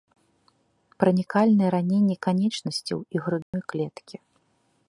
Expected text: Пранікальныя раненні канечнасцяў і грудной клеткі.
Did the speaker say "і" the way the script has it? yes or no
yes